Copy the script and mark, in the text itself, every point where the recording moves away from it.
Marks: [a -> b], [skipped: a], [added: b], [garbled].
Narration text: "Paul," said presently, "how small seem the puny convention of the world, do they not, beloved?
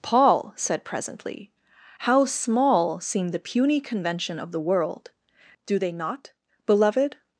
"Paul," said presently, "how small seem the puny convention of the world, do they not, beloved?